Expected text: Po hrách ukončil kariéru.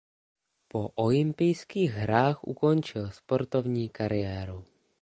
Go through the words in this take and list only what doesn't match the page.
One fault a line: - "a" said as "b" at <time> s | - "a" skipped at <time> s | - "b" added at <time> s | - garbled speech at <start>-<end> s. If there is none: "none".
- "olympijských" added at 0.9 s
- "sportovní" added at 3.1 s